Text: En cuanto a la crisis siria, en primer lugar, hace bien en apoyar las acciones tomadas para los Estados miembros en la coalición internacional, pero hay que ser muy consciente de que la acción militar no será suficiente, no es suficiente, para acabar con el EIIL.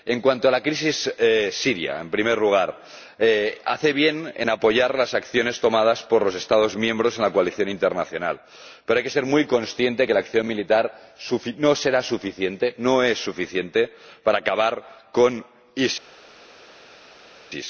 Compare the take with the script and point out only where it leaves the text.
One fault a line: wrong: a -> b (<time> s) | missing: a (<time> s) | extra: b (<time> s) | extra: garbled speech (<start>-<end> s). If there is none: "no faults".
wrong: para -> por (6.0 s)